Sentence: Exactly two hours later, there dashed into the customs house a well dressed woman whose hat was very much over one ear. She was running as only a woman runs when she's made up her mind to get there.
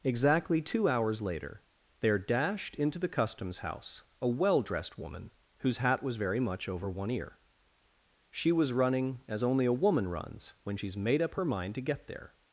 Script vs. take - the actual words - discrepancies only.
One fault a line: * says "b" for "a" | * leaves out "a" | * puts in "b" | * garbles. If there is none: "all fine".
all fine